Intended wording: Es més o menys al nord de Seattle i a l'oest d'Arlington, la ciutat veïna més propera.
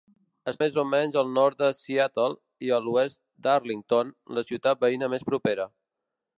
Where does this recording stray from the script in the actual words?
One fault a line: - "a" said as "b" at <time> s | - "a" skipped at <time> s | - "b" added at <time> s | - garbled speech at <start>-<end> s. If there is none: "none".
none